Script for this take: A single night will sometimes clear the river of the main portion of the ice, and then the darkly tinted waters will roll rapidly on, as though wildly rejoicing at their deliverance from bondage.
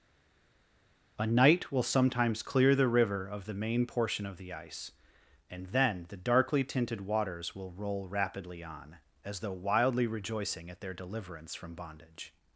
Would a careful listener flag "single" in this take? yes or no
yes